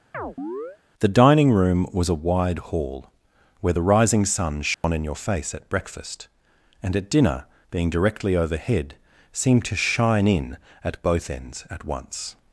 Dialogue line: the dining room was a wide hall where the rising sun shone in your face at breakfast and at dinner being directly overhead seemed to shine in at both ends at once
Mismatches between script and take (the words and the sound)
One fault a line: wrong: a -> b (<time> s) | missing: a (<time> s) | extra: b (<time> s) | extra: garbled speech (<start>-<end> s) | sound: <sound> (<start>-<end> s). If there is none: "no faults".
sound: chirp (0.1-0.8 s)
sound: dropout (4.7-4.8 s)